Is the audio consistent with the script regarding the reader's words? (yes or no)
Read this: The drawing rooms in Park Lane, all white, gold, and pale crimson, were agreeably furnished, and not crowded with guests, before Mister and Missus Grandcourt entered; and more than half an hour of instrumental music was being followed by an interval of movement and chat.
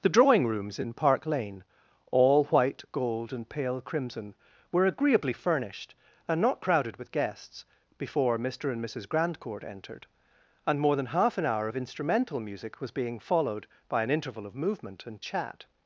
yes